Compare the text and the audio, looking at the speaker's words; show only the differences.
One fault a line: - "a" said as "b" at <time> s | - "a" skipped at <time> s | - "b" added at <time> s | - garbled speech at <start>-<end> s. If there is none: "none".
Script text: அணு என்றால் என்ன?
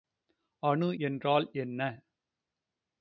none